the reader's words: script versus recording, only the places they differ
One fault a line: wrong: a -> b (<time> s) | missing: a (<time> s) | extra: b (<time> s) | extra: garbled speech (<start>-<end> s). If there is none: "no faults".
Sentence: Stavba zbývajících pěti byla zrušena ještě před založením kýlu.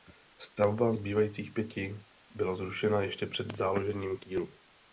no faults